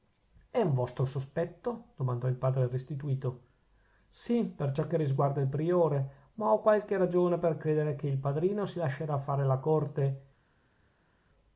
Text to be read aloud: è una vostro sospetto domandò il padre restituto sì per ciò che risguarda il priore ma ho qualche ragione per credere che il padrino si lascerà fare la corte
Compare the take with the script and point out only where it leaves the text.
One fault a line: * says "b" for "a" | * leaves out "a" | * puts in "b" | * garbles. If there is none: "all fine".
* says "un" for "una"